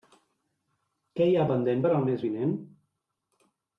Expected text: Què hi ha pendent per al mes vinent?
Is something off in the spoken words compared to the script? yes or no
no